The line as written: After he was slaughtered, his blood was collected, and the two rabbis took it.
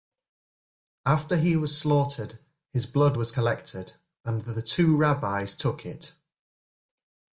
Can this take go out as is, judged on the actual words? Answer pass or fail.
pass